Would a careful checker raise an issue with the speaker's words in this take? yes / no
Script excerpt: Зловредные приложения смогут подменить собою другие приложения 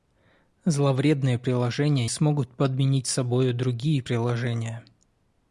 no